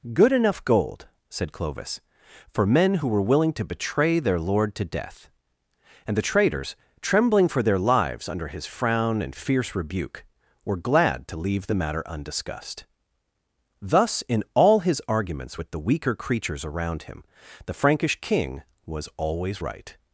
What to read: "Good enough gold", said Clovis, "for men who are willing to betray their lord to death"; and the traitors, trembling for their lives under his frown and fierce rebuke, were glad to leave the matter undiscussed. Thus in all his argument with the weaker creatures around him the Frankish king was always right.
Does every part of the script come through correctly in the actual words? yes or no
no